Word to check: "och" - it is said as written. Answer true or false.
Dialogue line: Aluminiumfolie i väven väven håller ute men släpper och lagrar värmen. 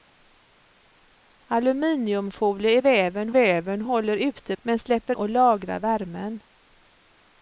true